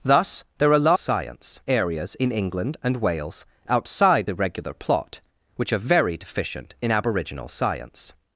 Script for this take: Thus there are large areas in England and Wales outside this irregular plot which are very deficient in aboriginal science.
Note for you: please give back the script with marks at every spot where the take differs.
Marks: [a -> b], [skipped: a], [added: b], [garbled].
Thus there are [large -> science] areas in England and Wales outside [skipped: this] irregular plot which are very deficient in aboriginal science.